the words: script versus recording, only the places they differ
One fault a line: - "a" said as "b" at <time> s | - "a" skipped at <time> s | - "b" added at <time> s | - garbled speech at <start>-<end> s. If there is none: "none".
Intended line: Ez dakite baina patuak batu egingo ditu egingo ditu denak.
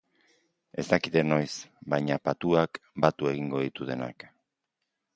- "noiz" added at 1.3 s
- "egingo ditu" skipped at 3.9 s